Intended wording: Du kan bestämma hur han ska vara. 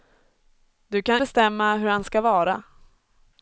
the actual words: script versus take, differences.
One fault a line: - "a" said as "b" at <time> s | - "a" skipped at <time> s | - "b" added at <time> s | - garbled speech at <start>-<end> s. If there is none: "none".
none